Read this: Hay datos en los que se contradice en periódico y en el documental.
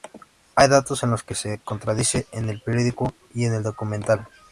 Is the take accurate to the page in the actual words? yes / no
no